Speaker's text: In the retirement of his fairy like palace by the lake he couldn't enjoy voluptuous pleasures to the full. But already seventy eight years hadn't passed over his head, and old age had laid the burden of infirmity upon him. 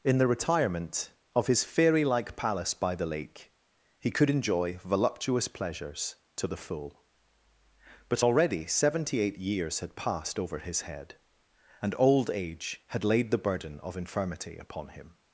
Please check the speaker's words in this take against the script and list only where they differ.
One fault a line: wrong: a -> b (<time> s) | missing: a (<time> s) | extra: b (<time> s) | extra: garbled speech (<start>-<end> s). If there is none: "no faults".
wrong: couldn't -> could (4.1 s)
wrong: hadn't -> had (9.8 s)